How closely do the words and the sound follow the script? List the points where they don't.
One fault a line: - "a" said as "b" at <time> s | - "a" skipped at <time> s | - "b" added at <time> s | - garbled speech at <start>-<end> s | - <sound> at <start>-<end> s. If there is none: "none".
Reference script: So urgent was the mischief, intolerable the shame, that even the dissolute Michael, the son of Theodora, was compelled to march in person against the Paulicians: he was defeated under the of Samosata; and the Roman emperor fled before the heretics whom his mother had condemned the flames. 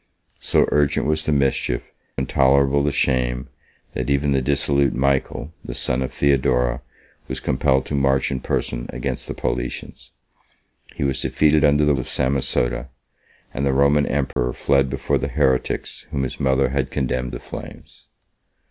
- dropout at 14.3-14.4 s